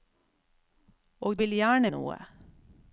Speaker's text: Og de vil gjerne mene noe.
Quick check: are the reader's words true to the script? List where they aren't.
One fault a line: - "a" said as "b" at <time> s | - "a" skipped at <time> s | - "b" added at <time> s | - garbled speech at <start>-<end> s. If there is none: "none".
- "de" skipped at 1.4 s
- "mene" skipped at 1.9 s